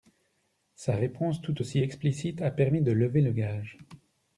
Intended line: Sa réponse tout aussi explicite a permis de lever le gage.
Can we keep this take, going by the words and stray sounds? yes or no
yes